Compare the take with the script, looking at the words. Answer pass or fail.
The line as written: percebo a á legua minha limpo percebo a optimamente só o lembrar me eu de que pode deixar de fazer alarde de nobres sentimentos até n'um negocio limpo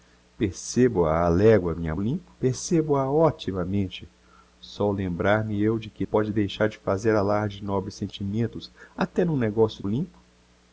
pass